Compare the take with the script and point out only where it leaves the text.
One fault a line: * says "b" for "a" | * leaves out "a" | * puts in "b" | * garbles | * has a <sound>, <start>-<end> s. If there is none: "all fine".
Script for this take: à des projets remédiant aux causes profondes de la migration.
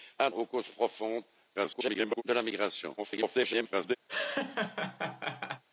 * leaves out "des projets remédiant"
* garbles
* garbles
* has a laugh, 4.1-5.6 s